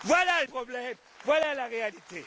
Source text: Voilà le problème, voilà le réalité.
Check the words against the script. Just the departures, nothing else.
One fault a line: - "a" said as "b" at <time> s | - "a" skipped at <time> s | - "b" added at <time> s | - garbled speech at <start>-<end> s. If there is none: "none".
- "le" said as "la" at 1.5 s